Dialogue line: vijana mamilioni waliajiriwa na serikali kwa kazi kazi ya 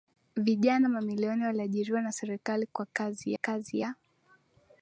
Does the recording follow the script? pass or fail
pass